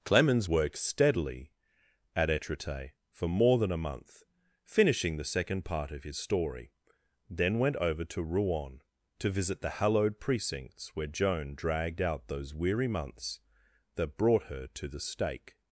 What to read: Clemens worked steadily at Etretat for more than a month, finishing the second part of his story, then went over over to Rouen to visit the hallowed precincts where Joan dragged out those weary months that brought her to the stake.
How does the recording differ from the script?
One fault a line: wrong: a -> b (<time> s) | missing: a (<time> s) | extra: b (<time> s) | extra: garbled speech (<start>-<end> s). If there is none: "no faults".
missing: over (8.0 s)